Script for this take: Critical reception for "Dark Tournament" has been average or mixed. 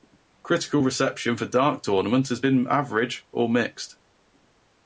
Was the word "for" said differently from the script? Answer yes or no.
no